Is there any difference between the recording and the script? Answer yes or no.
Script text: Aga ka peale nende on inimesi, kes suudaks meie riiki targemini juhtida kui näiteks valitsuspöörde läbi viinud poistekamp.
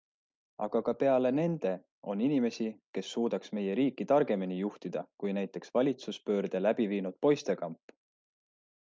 no